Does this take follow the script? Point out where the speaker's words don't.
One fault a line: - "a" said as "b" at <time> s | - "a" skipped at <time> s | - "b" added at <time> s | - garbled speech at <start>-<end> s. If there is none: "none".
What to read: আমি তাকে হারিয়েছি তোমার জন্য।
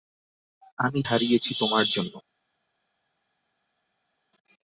- "তাকে" skipped at 1.0 s